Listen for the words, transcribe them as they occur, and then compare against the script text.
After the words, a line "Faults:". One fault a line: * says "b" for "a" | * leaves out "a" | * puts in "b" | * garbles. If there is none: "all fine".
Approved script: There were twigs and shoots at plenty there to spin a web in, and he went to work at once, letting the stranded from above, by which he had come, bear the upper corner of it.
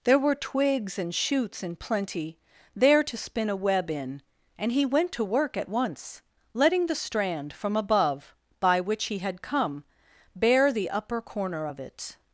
There were twigs and shoots in plenty there to spin a web in, and he went to work at once, letting the strand from above, by which he had come, bear the upper corner of it.
Faults:
* says "in" for "at"
* says "strand" for "stranded"